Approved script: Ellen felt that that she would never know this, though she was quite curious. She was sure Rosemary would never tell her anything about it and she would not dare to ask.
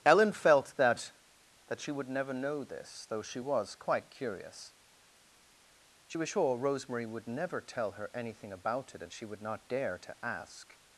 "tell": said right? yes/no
yes